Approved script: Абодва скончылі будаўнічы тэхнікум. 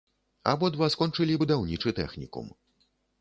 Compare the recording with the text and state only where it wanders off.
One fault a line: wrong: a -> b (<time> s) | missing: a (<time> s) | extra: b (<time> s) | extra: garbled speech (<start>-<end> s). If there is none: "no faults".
no faults